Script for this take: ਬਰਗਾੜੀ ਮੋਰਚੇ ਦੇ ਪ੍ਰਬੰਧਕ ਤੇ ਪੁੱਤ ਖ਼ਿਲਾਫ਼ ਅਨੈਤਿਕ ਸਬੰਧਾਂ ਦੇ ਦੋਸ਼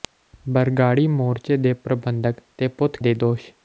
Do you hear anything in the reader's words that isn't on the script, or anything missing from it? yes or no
yes